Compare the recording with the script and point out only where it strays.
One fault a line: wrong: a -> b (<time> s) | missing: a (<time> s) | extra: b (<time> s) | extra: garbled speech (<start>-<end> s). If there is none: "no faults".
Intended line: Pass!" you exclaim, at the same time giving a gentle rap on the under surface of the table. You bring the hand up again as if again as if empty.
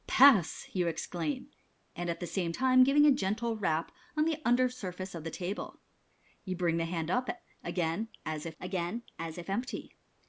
no faults